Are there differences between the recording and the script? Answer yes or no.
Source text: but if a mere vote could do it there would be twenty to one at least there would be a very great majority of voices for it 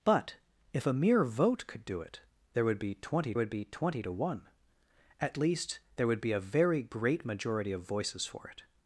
yes